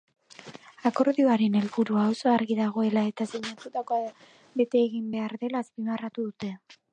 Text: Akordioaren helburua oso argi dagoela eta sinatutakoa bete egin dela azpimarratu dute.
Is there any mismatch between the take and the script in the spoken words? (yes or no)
yes